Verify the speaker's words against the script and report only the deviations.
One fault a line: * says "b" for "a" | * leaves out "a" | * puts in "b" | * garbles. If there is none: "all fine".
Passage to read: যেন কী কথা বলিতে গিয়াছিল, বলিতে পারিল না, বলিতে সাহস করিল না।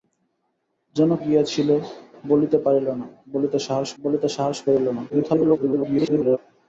* leaves out "কী কথা বলিতে"
* puts in "বলিতে সাহস"
* garbles